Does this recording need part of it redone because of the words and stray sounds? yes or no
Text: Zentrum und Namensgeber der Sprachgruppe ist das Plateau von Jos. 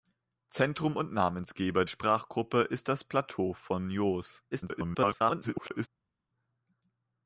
yes